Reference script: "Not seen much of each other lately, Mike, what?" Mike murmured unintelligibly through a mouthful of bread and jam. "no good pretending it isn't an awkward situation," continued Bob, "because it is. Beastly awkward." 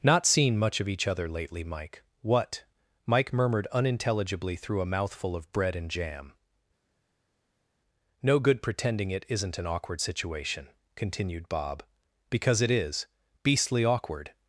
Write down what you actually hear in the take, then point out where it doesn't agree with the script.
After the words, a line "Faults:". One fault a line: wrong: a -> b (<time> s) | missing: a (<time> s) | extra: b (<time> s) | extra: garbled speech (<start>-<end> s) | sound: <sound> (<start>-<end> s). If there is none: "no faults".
"Not seen much of each other lately, Mike, what?" Mike murmured unintelligibly through a mouthful of bread and jam. "no good pretending it isn't an awkward situation," continued Bob, "because it is. Beastly awkward."
Faults:
no faults